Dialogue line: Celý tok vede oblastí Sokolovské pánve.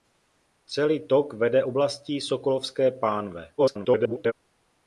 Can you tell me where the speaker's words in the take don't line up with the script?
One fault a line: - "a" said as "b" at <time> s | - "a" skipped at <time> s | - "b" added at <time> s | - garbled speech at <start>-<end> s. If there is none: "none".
- garbled speech at 3.6-4.3 s